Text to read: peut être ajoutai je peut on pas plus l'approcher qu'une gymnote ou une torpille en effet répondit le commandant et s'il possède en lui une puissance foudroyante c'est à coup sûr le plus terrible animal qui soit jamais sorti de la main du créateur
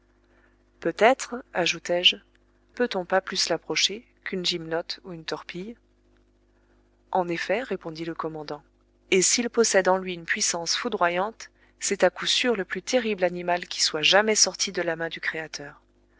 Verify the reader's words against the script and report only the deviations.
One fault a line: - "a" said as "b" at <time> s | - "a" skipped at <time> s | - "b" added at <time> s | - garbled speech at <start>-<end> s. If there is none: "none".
none